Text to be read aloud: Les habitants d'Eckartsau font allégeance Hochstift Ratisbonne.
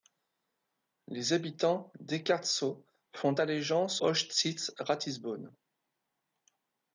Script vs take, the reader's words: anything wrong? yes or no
no